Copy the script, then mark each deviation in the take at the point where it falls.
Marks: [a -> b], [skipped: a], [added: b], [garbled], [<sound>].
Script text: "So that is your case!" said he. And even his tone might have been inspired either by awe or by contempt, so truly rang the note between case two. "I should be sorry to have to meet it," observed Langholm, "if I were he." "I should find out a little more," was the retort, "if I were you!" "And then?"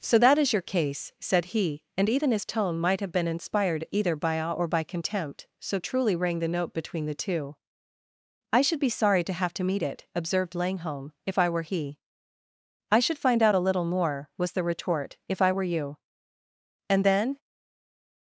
"So that is your case!" said he. And even his tone might have been inspired either by awe or by contempt, so truly rang the note between [case -> the] two. "I should be sorry to have to meet it," observed Langholm, "if I were he." "I should find out a little more," was the retort, "if I were you!" "And then?"